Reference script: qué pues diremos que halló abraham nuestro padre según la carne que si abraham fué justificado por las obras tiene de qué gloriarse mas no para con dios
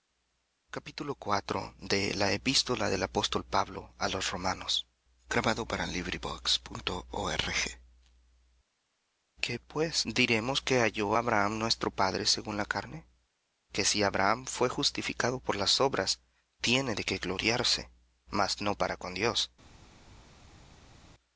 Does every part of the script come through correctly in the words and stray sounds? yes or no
yes